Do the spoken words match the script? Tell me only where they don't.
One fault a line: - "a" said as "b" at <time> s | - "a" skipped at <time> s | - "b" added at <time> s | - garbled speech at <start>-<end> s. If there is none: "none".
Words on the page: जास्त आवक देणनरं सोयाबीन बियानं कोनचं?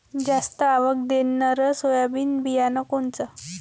none